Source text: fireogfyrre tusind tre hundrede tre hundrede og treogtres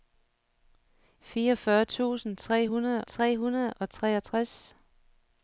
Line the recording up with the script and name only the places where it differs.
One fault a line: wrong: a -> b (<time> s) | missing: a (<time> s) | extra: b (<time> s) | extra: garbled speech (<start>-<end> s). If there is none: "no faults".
no faults